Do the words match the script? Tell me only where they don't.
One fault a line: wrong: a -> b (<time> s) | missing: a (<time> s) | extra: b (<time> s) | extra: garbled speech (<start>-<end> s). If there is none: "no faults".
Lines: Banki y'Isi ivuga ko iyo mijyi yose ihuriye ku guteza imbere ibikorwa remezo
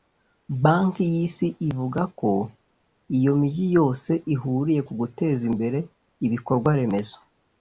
no faults